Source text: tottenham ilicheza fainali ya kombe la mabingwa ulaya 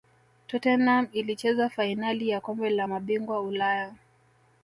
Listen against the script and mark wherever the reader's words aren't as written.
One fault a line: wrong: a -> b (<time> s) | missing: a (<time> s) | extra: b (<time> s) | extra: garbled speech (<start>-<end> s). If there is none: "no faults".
no faults